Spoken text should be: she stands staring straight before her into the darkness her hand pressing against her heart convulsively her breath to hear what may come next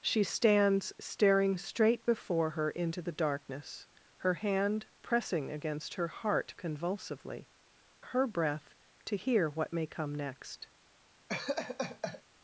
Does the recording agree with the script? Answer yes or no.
yes